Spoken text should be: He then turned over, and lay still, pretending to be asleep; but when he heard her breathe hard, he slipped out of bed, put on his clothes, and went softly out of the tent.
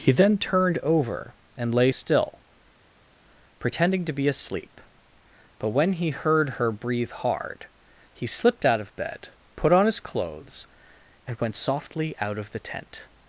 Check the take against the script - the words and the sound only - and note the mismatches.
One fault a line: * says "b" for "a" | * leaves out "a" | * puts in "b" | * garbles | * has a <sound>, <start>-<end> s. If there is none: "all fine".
all fine